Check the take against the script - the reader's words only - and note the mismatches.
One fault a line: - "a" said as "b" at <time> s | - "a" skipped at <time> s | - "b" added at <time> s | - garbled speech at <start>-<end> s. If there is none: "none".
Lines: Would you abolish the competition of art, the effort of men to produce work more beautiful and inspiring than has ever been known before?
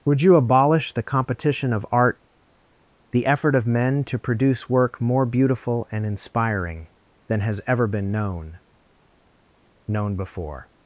- "known" added at 9.9 s